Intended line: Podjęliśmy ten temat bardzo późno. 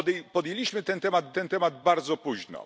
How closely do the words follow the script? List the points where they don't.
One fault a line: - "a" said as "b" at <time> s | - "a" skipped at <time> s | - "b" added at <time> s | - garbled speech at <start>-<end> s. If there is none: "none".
- "ten temat" added at 1.3 s